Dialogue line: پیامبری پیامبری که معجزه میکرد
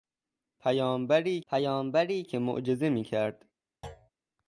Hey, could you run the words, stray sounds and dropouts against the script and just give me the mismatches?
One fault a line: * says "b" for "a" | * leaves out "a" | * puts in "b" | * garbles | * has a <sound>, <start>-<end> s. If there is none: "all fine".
* has a thud, 3.8-4.1 s